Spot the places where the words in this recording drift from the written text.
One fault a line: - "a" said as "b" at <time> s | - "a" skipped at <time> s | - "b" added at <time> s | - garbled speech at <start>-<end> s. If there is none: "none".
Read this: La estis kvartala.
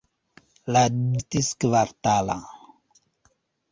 none